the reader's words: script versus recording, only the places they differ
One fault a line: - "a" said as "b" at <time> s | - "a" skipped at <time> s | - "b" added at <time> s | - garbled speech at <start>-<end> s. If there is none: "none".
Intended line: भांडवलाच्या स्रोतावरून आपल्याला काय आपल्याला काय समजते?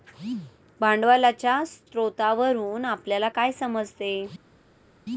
- "आपल्याला काय" skipped at 3.5 s